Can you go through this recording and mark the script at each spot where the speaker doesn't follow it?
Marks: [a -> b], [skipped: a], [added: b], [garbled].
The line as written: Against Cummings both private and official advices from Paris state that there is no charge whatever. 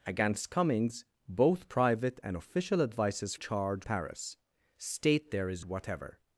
Against Cummings both private and official advices [from -> charge] Paris state [skipped: that] there is [skipped: no charge] whatever.